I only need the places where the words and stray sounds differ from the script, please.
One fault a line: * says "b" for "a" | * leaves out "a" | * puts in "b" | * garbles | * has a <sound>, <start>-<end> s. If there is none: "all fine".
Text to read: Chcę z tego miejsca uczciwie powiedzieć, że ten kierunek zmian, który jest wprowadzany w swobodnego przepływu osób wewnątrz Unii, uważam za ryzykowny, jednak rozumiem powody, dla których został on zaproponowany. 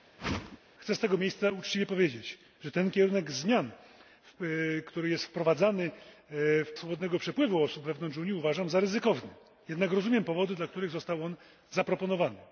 * has a whoosh, 0.2-0.6 s